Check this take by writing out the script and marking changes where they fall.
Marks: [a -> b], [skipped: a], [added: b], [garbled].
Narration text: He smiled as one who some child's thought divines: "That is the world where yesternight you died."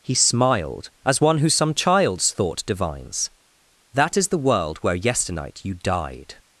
He smiled as one who some child's thought divines: "That is the world where yesternight you died."